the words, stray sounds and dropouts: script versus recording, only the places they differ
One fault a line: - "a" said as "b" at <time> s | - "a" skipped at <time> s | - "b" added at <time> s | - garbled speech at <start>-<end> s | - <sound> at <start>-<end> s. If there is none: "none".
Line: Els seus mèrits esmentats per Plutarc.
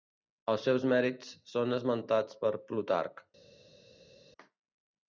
- "són" added at 1.5 s